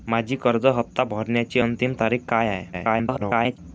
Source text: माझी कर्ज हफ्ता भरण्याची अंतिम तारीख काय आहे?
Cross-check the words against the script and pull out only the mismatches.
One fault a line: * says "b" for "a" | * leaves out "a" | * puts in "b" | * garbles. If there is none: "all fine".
* garbles